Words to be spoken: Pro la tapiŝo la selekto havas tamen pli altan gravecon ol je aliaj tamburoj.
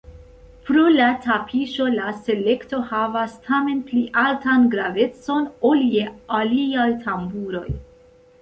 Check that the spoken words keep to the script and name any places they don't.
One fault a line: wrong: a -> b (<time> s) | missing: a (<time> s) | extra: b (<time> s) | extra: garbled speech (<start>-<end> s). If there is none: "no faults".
no faults